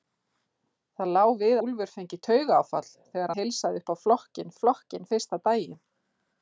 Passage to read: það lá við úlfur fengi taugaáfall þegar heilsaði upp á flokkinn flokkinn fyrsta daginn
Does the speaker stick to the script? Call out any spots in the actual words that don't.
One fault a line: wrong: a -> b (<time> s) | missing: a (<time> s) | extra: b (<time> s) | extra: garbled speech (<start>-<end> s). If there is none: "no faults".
no faults